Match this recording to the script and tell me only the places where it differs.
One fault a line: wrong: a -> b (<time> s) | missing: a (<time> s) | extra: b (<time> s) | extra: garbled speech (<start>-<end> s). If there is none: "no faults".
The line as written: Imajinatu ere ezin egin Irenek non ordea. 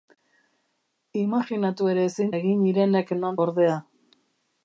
no faults